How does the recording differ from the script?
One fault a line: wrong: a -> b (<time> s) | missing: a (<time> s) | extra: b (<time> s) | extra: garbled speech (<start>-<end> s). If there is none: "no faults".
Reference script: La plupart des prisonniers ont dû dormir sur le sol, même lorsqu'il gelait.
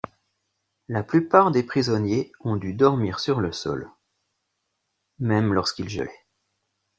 no faults